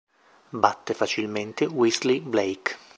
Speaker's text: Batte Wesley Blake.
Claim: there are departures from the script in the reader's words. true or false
true